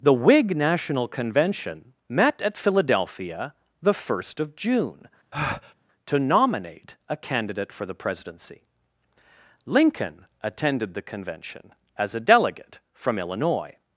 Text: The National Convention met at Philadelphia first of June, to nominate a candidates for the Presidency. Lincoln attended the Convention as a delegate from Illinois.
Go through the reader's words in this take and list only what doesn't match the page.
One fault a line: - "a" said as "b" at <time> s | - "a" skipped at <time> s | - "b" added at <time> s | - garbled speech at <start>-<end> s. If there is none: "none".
- "Whig" added at 0.1 s
- "the" added at 3.8 s
- "candidates" said as "candidate" at 7.2 s